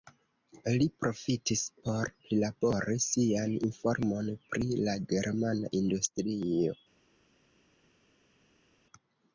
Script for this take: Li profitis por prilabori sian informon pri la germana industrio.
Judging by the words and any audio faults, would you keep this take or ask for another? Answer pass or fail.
pass